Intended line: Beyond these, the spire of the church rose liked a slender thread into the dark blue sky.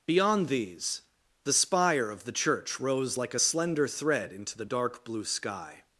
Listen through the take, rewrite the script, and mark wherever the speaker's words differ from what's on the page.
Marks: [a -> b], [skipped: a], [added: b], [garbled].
Beyond these, the spire of the church rose [liked -> like] a slender thread into the dark blue sky.